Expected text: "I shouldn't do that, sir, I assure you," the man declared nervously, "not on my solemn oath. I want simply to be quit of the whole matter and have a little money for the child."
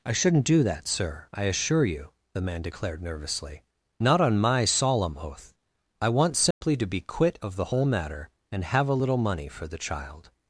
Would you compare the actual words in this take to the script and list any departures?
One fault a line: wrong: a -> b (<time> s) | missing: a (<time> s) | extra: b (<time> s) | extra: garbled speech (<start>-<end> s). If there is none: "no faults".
no faults